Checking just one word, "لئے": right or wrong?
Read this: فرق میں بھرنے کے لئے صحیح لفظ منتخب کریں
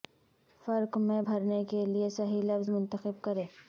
right